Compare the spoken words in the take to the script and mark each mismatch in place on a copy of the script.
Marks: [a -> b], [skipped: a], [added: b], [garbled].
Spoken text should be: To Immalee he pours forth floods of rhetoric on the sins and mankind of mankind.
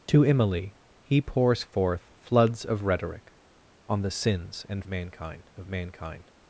To Immalee he pours forth floods of rhetoric on the sins and mankind of mankind.